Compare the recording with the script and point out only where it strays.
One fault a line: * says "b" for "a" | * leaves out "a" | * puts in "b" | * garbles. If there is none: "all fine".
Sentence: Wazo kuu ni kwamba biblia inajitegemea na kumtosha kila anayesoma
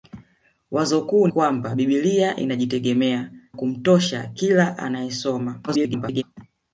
* leaves out "ni"
* leaves out "na"
* garbles